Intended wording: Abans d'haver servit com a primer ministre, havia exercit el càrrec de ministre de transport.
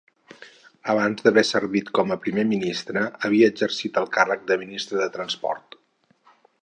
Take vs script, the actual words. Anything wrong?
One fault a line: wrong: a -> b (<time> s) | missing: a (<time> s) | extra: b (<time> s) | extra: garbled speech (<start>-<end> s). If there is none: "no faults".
no faults